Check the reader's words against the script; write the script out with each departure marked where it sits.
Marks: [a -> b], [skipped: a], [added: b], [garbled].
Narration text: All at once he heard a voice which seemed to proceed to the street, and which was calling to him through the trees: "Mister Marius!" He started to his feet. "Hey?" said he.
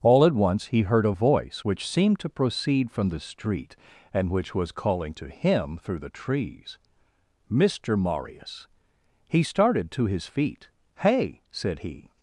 All at once he heard a voice which seemed to proceed [to -> from] the street, and which was calling to him through the trees: "Mister Marius!" He started to his feet. "Hey?" said he.